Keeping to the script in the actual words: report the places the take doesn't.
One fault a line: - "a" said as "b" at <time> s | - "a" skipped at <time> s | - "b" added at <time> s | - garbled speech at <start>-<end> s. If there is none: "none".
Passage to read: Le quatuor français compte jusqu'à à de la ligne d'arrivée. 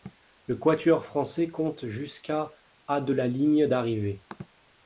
none